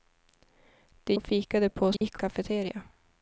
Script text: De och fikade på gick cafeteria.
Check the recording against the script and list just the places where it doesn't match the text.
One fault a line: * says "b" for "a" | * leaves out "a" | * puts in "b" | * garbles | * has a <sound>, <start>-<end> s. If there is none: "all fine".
* has a dropout, 2.0-2.0 s